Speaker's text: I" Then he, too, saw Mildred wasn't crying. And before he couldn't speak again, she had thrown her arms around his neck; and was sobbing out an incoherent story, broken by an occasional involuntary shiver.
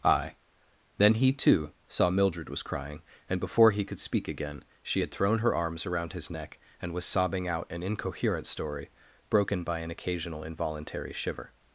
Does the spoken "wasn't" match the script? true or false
false